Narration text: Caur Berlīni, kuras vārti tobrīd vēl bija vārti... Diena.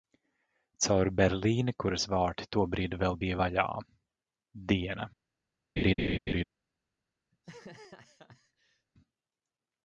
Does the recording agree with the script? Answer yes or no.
no